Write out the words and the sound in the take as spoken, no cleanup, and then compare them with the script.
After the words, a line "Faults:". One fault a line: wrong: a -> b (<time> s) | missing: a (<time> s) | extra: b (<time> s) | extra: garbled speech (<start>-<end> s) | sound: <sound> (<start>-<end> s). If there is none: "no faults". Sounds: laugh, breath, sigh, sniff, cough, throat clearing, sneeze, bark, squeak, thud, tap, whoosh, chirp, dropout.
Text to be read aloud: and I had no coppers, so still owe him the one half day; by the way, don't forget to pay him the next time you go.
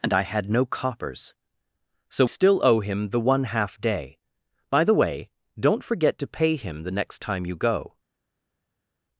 and I had no coppers, so still owe him the one half day; by the way, don't forget to pay him the next time you go.
Faults:
no faults